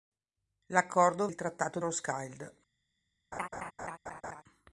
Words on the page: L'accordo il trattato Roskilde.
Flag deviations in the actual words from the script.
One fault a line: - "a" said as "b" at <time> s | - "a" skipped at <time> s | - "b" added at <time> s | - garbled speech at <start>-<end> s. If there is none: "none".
none